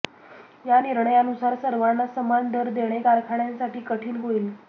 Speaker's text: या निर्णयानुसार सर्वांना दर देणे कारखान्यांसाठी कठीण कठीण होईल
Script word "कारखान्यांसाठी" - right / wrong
right